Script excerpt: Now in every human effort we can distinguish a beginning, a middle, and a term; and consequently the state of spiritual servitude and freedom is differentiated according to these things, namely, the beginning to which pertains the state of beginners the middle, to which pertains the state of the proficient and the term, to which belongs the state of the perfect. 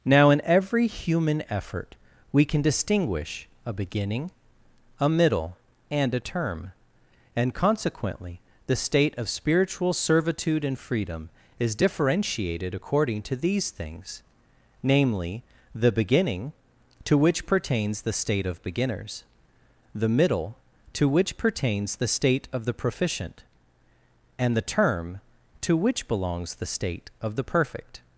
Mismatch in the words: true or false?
false